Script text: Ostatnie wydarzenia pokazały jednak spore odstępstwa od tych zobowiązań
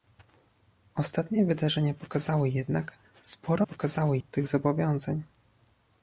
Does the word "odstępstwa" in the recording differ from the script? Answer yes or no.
yes